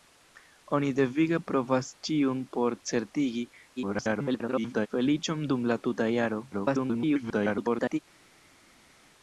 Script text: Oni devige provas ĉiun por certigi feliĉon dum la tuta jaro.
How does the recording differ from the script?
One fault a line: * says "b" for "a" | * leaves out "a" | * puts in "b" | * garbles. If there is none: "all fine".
* garbles
* garbles